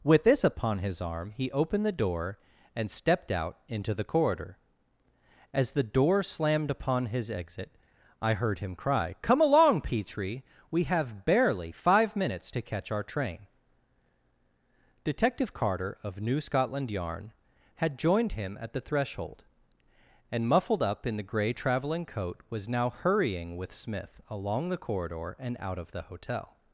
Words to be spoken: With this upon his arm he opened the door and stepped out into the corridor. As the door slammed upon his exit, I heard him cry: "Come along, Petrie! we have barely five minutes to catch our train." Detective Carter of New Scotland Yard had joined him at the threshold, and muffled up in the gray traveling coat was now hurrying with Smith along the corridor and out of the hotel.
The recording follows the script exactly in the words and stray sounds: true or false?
false